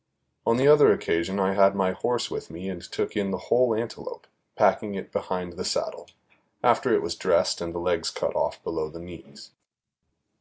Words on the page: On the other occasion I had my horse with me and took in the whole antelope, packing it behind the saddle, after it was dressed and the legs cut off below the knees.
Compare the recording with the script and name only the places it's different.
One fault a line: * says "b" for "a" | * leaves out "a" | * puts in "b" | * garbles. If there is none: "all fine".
all fine